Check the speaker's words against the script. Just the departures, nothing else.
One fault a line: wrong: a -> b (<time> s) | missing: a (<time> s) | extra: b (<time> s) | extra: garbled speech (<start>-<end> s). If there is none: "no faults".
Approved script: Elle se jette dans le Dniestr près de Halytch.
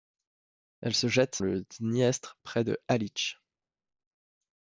missing: dans (1.4 s)